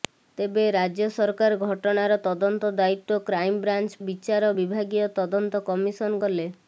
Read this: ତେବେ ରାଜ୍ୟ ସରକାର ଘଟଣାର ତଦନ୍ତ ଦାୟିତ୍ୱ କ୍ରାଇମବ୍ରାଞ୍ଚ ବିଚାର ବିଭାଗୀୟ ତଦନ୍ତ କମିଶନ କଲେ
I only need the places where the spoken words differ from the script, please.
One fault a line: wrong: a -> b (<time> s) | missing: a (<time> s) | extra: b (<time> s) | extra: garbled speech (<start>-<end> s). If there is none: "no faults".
no faults